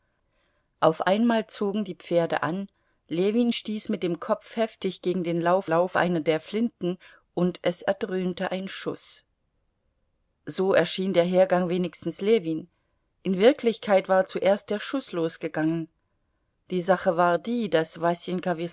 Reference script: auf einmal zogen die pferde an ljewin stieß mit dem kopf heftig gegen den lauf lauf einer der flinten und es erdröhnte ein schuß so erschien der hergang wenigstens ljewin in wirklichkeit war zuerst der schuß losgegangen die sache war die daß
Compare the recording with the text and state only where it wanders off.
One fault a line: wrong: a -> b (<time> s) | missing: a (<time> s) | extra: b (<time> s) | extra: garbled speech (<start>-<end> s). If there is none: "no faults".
no faults